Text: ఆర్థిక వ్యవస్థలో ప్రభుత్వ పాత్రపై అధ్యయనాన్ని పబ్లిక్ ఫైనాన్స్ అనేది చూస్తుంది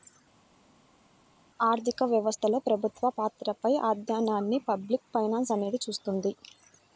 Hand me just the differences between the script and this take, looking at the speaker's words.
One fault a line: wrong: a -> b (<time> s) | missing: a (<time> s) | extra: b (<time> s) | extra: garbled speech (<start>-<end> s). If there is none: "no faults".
no faults